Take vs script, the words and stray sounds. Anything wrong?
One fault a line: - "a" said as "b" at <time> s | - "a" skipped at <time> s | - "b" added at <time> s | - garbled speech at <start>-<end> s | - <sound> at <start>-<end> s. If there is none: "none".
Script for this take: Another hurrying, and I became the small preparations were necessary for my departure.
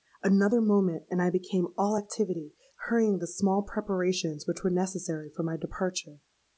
- "hurrying" said as "moment" at 0.6 s
- "all activity hurrying" added at 1.8 s
- "which" added at 4.5 s